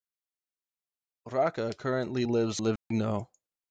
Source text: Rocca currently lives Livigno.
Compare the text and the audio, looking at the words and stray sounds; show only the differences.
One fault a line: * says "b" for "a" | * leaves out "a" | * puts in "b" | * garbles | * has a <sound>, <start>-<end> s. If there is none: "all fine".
* has a dropout, 2.8-2.9 s